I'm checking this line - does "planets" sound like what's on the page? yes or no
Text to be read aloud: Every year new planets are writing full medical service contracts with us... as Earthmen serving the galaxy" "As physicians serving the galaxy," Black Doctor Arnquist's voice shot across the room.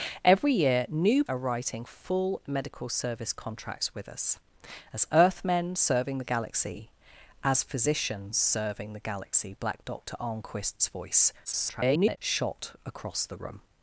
no